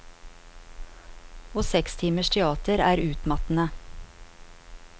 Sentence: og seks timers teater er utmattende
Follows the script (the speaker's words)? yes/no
yes